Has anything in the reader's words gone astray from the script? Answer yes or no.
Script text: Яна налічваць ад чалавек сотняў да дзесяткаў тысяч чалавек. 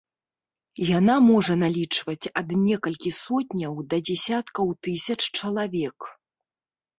yes